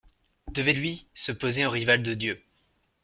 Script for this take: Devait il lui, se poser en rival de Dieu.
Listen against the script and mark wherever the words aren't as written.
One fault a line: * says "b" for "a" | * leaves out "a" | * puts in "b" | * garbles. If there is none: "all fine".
* leaves out "il"